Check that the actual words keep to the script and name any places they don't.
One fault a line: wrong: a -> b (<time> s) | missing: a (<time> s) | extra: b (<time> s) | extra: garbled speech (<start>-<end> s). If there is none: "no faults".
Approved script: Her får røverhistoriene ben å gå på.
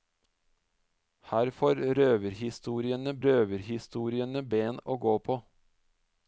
extra: røverhistoriene (3.3 s)